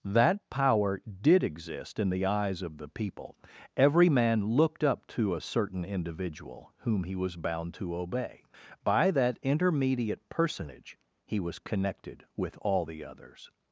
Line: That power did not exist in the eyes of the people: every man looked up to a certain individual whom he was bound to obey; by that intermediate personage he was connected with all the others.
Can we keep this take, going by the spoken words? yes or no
no